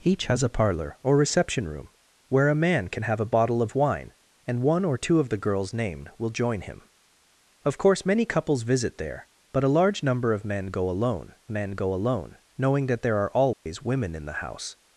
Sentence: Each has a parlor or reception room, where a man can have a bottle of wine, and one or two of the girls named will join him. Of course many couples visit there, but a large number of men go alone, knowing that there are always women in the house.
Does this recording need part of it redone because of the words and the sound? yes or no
yes